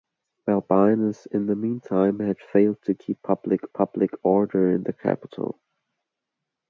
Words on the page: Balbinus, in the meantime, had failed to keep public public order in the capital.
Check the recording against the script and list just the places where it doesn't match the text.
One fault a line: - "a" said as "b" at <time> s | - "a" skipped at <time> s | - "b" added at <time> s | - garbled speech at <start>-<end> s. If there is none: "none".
none